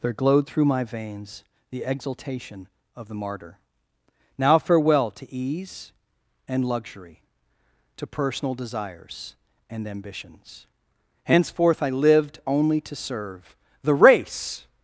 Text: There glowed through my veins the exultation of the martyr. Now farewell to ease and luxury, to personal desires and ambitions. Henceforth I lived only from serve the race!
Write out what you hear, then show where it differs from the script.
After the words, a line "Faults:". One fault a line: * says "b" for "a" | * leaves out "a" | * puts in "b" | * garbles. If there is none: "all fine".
There glowed through my veins the exultation of the martyr. Now farewell to ease and luxury, to personal desires and ambitions. Henceforth I lived only to serve the race!
Faults:
* says "to" for "from"